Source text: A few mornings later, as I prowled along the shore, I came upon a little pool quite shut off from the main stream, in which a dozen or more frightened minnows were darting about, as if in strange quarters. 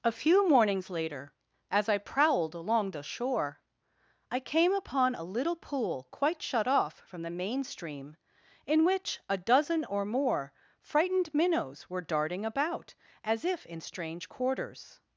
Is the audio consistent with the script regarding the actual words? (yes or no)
yes